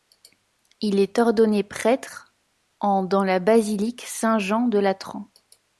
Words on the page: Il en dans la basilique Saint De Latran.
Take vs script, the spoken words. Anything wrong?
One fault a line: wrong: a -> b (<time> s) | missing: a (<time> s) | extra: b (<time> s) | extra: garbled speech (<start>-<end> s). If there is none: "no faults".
extra: est ordonné prêtre (1.0 s)
extra: Jean (4.4 s)